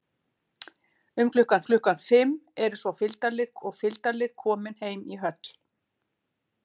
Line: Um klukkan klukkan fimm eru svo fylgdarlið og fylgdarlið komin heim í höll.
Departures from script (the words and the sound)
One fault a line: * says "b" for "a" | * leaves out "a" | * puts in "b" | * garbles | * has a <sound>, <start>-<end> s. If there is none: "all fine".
all fine